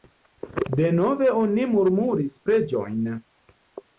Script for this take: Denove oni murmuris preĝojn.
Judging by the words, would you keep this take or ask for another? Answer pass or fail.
pass